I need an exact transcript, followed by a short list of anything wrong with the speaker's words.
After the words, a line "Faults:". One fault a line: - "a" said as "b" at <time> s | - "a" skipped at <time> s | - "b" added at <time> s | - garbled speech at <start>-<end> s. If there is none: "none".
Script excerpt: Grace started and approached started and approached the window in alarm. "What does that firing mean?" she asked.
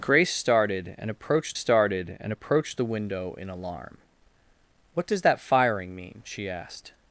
Grace started and approached started and approached the window in alarm. "What does that firing mean?" she asked.
Faults:
none